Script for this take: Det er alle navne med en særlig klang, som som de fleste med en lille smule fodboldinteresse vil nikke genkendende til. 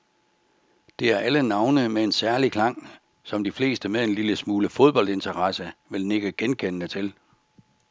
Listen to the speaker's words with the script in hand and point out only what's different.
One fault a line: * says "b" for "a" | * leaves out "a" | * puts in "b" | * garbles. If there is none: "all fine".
* leaves out "som"